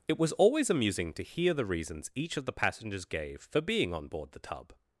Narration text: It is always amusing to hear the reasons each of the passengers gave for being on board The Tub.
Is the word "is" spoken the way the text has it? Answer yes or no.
no